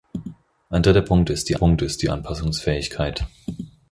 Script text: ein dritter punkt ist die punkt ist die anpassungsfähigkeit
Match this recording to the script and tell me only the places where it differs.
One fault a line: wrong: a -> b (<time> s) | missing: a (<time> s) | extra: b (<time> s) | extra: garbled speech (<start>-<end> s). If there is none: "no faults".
no faults